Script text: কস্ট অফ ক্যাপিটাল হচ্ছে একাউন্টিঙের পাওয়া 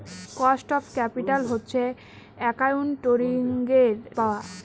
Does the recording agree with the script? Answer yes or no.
yes